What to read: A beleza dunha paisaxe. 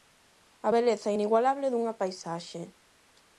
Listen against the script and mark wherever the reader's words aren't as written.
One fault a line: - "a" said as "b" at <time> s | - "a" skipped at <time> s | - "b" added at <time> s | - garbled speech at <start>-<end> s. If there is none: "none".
- "inigualable" added at 1.1 s